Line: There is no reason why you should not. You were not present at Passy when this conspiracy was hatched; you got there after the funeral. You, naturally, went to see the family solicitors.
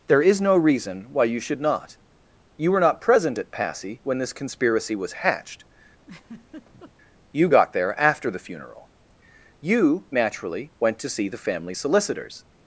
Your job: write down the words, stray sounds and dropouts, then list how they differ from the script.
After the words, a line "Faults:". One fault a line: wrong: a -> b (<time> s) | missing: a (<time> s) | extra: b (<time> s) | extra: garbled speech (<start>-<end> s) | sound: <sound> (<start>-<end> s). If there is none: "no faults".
There is no reason why you should not. You were not present at Passy when this conspiracy was hatched; you got there after the funeral. You, naturally, went to see the family solicitors.
Faults:
sound: laugh (6.0-6.9 s)